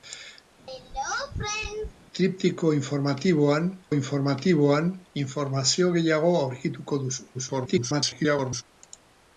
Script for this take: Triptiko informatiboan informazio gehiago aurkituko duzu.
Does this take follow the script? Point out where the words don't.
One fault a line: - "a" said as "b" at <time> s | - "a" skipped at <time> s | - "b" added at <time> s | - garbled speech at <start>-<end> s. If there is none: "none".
- "informatiboan" added at 3.9 s
- garbled speech at 7.3-8.6 s